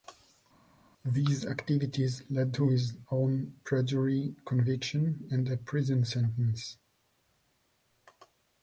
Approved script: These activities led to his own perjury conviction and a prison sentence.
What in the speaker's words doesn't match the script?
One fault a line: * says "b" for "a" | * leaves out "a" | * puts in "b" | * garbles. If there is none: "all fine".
all fine